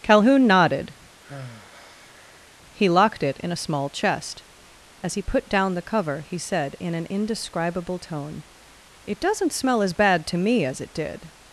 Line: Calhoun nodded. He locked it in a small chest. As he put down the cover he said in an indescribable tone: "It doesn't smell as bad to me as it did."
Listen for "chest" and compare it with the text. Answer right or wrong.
right